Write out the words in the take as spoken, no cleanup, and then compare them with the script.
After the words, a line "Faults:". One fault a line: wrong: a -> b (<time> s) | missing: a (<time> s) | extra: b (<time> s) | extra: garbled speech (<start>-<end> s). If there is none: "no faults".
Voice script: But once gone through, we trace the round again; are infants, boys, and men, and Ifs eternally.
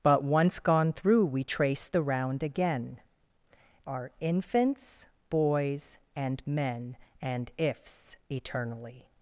But once gone through, we trace the round again; are infants, boys, and men, and Ifs eternally.
Faults:
no faults